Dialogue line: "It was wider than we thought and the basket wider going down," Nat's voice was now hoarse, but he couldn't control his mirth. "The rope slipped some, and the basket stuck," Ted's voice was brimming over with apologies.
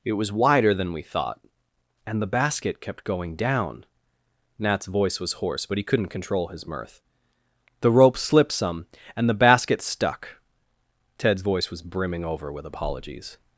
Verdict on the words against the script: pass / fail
fail